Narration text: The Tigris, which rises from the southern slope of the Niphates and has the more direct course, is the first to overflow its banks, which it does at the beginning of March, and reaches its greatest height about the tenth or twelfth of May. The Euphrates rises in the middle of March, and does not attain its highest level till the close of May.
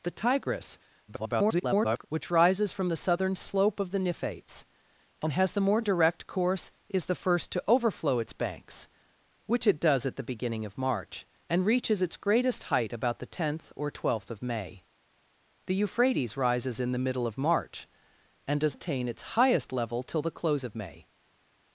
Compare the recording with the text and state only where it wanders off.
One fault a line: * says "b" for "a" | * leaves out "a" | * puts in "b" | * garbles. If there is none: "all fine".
* garbles
* leaves out "not"